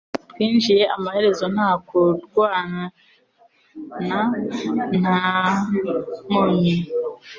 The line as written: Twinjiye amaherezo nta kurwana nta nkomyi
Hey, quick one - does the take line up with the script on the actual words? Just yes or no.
yes